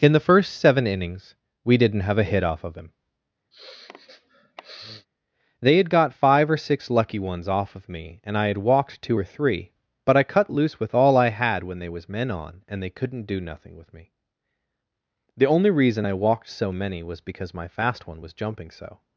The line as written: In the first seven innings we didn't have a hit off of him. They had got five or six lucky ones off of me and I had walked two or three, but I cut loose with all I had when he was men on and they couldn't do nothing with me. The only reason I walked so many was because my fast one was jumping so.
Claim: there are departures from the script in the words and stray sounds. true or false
true